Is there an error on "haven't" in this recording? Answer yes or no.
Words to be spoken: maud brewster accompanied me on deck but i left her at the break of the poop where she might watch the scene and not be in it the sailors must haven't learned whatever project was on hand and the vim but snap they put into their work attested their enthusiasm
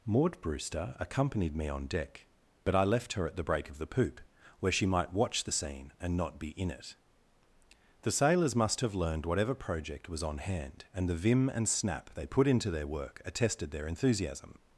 yes